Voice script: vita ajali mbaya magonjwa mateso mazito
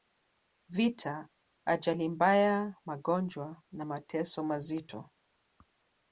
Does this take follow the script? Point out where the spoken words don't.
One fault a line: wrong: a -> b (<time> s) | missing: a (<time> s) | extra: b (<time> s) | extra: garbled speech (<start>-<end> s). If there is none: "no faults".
extra: na (3.7 s)